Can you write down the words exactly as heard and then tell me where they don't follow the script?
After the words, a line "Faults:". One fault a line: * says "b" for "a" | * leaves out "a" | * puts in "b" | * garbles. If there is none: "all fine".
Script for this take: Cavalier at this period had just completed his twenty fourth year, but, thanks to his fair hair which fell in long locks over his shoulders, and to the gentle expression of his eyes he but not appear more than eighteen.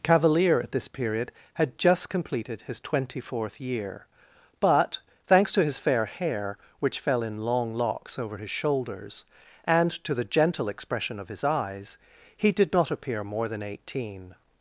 Cavalier at this period had just completed his twenty fourth year, but, thanks to his fair hair which fell in long locks over his shoulders, and to the gentle expression of his eyes he did not appear more than eighteen.
Faults:
* says "did" for "but"